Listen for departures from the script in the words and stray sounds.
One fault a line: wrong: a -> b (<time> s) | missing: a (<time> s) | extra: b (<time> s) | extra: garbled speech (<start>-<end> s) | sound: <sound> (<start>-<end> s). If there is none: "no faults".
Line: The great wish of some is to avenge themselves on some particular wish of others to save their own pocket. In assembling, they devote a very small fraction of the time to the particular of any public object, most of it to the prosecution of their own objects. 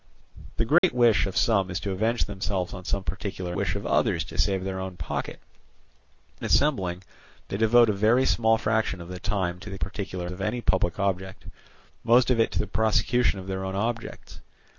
sound: dropout (0.8-0.8 s)